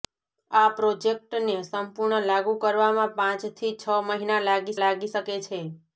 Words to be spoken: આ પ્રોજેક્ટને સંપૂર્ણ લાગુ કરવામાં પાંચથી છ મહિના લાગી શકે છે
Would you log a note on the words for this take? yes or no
yes